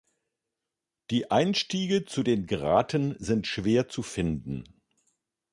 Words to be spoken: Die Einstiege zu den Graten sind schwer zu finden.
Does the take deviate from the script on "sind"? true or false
false